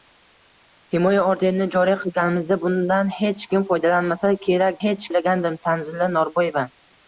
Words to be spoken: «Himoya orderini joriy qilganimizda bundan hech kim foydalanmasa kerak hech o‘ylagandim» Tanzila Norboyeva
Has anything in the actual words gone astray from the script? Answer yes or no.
no